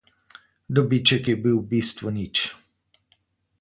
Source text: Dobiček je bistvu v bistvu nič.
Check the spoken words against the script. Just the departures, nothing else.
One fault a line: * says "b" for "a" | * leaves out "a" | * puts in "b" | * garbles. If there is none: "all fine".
* says "bil" for "bistvu"